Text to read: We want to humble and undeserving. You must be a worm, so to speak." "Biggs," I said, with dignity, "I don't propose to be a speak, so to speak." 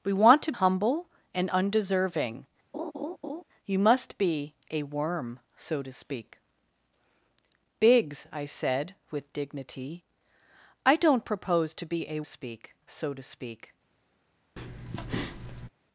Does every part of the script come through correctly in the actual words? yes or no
yes